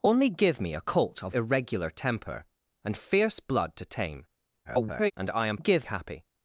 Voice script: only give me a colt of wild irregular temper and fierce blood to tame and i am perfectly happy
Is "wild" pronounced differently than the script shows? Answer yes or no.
yes